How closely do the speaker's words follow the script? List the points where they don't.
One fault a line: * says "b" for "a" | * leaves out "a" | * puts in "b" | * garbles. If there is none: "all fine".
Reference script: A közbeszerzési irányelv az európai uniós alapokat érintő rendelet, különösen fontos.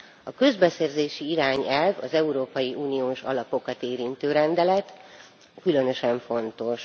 all fine